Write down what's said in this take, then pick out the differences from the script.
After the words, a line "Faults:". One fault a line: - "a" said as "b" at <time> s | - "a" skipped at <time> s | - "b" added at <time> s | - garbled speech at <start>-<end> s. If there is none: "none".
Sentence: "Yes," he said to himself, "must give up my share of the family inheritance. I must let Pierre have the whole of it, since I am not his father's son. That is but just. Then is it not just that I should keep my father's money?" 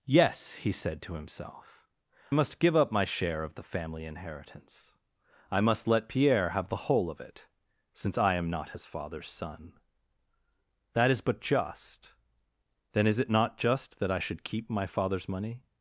"Yes," he said to himself, "must give up my share of the family inheritance. I must let Pierre have the whole of it, since I am not his father's son. That is but just. Then is it not just that I should keep my father's money?"
Faults:
none